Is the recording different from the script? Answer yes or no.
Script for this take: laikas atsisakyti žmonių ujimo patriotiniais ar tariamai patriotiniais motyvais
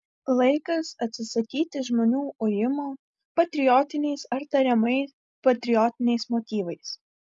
no